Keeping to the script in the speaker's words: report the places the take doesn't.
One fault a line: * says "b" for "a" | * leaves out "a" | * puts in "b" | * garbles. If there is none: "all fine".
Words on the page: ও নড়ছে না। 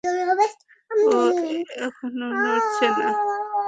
* puts in "এখনো"